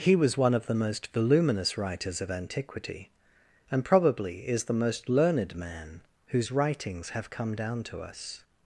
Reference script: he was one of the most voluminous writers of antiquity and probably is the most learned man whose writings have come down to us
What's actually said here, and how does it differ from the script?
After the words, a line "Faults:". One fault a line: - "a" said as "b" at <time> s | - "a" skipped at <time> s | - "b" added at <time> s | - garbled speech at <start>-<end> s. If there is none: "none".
he was one of the most voluminous writers of antiquity and probably is the most learned man whose writings have come down to us
Faults:
none